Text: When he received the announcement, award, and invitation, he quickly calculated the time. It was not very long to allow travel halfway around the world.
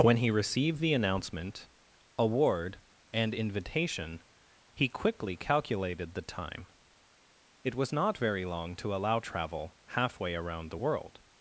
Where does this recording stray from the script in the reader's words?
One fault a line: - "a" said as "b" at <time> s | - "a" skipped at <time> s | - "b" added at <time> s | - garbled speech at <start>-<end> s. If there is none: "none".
none